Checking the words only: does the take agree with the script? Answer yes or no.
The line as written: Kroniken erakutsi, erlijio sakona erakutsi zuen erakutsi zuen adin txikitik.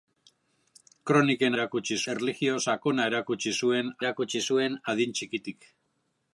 yes